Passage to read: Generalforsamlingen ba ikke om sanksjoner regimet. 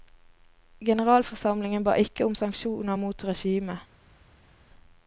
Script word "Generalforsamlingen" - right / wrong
right